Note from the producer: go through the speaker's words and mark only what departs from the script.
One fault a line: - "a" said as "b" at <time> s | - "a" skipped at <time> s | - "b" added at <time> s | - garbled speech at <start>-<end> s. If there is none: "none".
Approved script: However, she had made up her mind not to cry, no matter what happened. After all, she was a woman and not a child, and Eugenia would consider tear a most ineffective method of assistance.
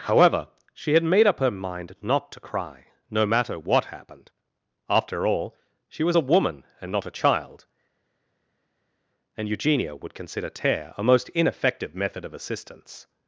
none